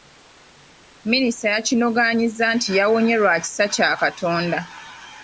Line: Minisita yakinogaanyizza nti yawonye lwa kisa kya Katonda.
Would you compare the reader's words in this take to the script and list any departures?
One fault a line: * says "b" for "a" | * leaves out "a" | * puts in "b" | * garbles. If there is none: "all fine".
all fine